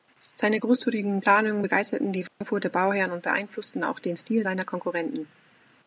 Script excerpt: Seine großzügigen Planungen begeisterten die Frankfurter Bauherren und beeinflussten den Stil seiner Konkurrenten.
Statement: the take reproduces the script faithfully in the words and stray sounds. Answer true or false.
false